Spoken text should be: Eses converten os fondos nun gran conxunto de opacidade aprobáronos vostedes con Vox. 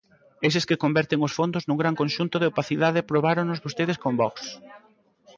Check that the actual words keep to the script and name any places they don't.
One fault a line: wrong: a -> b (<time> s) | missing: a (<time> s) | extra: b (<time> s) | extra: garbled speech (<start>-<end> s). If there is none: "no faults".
extra: que (0.7 s)